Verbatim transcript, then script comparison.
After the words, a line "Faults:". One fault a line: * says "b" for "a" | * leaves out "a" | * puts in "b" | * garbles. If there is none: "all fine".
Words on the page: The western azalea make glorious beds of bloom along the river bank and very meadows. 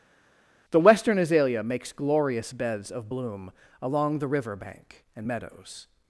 The western azalea makes glorious beds of bloom along the river bank and meadows.
Faults:
* says "makes" for "make"
* leaves out "very"